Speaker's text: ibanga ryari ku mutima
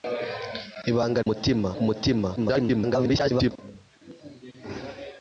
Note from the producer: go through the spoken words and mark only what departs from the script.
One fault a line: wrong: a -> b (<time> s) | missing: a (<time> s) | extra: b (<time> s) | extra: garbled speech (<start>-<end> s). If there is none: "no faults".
wrong: ryari -> mutima (1.3 s)
extra: garbled speech (2.4-3.5 s)